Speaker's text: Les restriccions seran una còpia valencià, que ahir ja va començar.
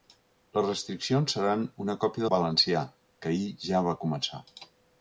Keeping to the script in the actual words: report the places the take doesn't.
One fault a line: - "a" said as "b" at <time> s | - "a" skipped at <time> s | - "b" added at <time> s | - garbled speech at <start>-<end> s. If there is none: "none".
none